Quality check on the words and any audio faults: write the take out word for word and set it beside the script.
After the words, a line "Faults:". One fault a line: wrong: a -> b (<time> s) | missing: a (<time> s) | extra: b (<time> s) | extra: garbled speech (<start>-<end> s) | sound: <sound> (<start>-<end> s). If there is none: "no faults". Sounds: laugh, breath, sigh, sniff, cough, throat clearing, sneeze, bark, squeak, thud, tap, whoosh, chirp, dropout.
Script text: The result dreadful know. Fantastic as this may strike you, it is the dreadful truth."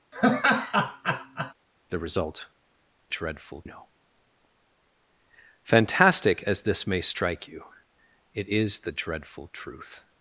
The result dreadful know. Fantastic as this may strike you, it is the dreadful truth."
Faults:
sound: laugh (0.1-1.5 s)